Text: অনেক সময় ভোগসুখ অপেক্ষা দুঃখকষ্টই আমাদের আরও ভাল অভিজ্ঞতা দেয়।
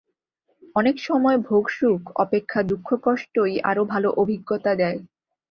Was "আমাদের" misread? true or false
true